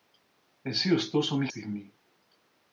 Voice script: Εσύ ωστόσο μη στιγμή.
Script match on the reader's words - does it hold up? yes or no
yes